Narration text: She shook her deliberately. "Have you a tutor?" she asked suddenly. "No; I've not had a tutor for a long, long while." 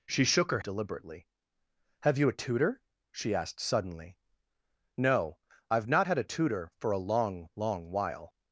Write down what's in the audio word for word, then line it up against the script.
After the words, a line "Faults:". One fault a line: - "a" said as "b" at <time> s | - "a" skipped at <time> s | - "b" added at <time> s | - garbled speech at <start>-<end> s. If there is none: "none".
She shook her deliberately. "Have you a tutor?" she asked suddenly. "No; I've not had a tutor for a long, long while."
Faults:
none